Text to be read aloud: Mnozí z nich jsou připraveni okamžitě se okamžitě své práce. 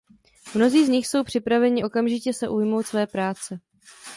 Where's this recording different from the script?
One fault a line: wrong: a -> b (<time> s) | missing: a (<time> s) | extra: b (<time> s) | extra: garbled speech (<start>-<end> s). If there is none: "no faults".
wrong: okamžitě -> ujmout (2.5 s)